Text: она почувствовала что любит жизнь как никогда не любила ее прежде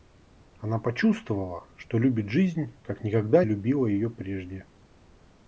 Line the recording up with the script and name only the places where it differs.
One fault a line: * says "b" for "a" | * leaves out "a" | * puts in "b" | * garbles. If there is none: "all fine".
* leaves out "не"